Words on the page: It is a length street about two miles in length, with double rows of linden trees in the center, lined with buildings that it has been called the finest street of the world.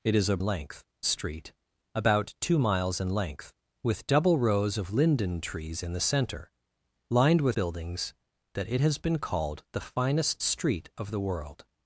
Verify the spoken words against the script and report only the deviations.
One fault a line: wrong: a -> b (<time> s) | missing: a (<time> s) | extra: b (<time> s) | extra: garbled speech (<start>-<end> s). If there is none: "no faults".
no faults